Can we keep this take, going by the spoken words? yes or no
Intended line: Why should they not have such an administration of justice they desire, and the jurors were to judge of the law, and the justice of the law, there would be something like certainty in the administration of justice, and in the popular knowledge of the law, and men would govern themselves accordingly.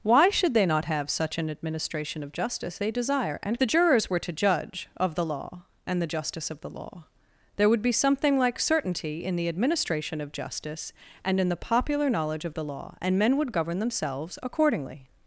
yes